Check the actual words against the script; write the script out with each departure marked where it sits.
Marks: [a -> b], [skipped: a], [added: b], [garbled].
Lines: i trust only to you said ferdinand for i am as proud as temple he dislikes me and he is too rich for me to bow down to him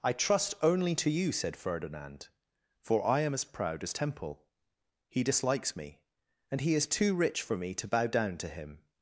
i trust only to you said ferdinand for i am as proud as temple he dislikes me and he is too rich for me to bow down to him